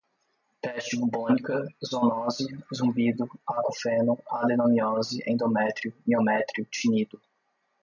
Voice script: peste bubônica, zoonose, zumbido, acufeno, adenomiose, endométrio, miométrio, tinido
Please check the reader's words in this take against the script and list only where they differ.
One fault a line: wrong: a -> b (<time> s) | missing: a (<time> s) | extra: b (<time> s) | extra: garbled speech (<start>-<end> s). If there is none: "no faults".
no faults